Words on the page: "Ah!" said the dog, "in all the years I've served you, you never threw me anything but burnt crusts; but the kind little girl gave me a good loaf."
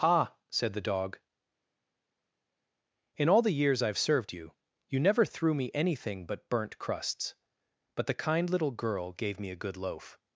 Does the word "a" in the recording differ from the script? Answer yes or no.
no